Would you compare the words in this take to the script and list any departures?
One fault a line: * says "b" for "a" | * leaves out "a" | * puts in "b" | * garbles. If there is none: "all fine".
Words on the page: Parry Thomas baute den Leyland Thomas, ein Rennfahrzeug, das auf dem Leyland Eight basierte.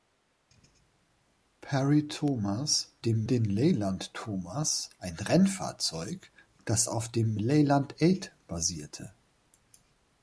* says "dem" for "baute"